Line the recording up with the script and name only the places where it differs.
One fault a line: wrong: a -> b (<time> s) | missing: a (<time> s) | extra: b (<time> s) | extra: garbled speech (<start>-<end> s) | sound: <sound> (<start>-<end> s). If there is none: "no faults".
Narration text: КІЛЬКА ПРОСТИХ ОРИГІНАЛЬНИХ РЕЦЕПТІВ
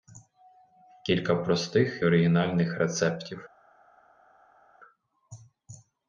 no faults